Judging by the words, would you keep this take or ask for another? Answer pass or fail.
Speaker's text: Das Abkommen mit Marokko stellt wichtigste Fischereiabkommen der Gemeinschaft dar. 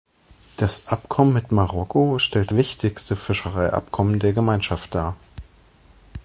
pass